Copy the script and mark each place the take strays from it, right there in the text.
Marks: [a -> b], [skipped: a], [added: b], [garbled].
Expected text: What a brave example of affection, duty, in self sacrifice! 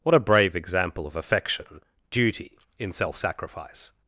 What a brave example of affection, duty, in self sacrifice!